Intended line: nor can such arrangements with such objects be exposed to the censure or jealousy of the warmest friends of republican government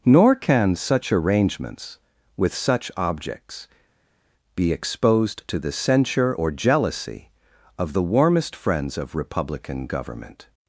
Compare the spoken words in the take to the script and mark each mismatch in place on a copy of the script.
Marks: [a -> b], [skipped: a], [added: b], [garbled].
nor can such arrangements with such objects be exposed to the censure or jealousy of the warmest friends of republican government